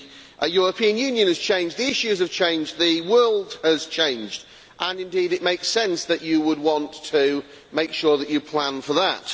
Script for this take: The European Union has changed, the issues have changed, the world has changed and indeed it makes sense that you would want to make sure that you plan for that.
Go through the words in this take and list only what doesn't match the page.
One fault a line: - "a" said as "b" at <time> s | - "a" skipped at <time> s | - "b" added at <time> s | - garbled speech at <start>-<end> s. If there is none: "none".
none